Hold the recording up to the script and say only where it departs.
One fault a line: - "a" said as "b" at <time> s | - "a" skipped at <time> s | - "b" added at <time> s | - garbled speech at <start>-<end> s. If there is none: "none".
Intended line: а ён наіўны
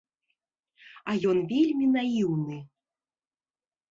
- "вельмі" added at 1.5 s